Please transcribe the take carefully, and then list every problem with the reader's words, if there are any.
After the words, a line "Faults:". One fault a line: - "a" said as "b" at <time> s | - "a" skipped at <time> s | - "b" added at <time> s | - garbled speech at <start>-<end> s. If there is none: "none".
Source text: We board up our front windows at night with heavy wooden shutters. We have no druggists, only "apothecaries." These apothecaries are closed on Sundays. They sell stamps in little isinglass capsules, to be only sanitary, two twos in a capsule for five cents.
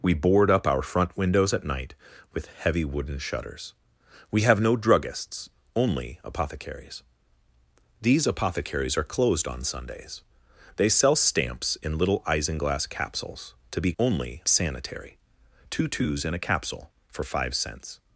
We board up our front windows at night with heavy wooden shutters. We have no druggists, only "apothecaries." These apothecaries are closed on Sundays. They sell stamps in little isinglass capsules, to be only sanitary, two twos in a capsule for five cents.
Faults:
none